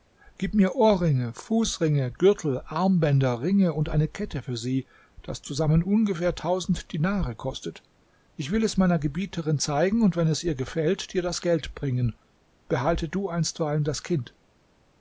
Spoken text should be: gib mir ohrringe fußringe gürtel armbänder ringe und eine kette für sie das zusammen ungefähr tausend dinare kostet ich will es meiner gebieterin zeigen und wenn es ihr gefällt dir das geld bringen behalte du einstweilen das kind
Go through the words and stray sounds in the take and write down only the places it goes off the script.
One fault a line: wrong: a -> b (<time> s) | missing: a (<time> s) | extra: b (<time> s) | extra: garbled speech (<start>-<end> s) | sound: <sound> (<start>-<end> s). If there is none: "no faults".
no faults